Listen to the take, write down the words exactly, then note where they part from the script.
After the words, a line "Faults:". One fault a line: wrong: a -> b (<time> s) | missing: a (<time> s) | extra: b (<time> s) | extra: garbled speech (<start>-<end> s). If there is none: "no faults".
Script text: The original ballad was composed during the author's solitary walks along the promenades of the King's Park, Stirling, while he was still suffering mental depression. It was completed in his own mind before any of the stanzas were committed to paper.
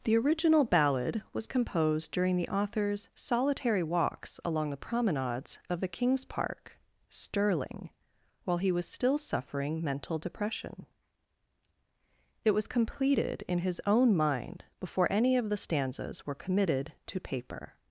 The original ballad was composed during the author's solitary walks along the promenades of the King's Park, Stirling, while he was still suffering mental depression. It was completed in his own mind before any of the stanzas were committed to paper.
Faults:
no faults